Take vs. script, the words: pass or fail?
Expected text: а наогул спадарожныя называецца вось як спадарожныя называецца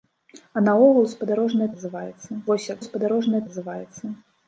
pass